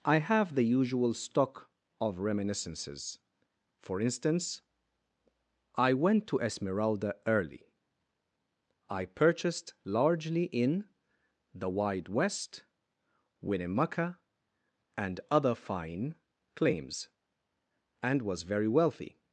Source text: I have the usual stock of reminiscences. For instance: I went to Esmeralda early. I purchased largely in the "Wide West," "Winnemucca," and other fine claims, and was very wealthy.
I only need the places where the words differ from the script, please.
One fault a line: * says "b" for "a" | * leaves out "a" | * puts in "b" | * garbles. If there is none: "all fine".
all fine